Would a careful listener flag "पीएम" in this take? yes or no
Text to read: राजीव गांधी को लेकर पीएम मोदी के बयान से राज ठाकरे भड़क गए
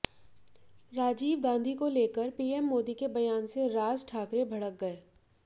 no